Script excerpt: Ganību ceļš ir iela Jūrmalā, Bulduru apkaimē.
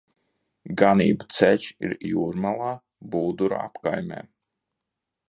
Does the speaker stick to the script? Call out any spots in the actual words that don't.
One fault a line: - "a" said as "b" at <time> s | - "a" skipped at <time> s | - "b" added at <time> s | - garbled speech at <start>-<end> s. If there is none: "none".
- "iela" skipped at 1.9 s